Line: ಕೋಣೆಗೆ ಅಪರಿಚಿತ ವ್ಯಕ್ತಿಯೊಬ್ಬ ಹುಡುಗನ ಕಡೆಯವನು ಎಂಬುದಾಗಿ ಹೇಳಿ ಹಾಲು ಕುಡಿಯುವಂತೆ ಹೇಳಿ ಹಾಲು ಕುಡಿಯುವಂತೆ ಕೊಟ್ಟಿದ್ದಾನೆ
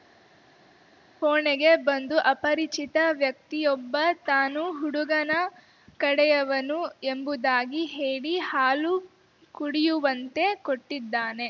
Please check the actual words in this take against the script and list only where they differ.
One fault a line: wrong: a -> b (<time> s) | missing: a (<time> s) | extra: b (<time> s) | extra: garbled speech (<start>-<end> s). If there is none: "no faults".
extra: ಬಂದು (1.8 s)
extra: ತಾನು (4.2 s)
missing: ಹೇಳಿ ಹಾಲು ಕುಡಿಯುವಂತೆ (10.5 s)